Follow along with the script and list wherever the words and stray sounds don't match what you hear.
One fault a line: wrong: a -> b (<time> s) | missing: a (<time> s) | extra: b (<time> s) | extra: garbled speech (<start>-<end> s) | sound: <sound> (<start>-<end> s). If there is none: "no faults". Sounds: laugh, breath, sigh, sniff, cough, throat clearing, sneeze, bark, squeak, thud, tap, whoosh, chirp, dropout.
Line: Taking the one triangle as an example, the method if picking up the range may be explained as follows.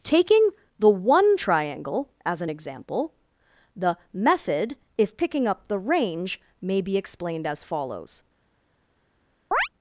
sound: chirp (9.5-9.7 s)